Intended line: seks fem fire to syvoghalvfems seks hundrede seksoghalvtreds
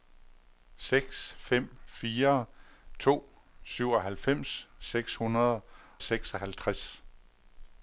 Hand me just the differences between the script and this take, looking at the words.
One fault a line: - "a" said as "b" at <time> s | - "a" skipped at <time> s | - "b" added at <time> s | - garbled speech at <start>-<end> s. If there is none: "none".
none